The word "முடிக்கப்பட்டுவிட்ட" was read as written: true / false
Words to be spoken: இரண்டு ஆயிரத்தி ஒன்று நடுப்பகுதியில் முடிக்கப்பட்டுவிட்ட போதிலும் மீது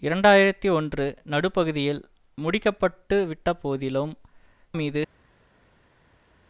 true